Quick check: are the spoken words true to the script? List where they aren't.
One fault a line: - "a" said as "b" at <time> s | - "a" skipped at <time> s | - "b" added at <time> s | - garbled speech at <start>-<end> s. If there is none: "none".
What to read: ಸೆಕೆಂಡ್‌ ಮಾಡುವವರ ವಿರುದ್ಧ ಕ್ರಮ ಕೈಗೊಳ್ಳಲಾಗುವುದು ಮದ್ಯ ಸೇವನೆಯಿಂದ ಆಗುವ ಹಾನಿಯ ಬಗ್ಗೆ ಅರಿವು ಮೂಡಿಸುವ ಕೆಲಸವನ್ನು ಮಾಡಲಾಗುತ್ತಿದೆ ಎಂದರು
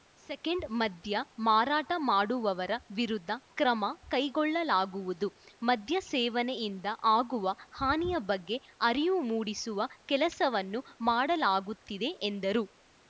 - "ಮದ್ಯ ಮಾರಾಟ" added at 0.8 s